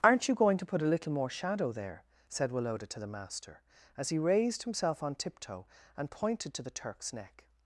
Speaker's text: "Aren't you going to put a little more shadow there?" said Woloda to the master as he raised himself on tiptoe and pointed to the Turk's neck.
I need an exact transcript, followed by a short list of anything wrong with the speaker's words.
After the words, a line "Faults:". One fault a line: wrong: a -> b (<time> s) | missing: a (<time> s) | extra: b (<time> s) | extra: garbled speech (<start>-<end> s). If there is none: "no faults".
"Aren't you going to put a little more shadow there?" said Woloda to the master as he raised himself on tiptoe and pointed to the Turk's neck.
Faults:
no faults